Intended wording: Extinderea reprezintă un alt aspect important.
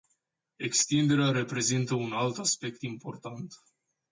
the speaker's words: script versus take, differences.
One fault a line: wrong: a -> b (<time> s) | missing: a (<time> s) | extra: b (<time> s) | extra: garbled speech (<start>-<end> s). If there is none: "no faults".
no faults